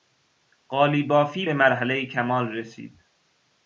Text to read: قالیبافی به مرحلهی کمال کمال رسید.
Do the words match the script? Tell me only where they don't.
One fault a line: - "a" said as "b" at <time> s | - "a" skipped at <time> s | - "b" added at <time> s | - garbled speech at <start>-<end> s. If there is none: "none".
- "کمال" skipped at 2.5 s